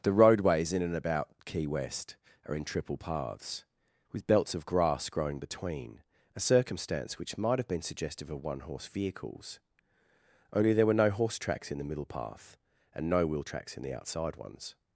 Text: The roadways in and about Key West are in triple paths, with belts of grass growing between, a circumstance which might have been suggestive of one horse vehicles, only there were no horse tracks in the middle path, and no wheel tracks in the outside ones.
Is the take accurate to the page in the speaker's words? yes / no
yes